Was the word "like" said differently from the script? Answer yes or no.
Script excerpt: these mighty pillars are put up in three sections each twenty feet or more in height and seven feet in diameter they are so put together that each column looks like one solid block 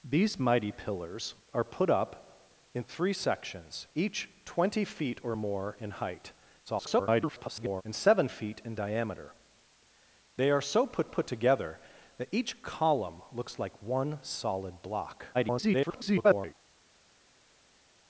no